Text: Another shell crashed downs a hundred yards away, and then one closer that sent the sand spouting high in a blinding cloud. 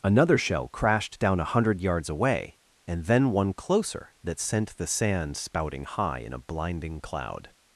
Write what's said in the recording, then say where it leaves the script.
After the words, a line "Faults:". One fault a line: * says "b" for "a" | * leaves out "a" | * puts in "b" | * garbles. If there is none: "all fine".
Another shell crashed down a hundred yards away, and then one closer that sent the sand spouting high in a blinding cloud.
Faults:
* says "down" for "downs"